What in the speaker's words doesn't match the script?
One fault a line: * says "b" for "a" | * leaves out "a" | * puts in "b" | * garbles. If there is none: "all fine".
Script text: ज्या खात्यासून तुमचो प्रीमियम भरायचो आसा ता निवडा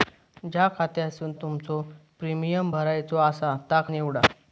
all fine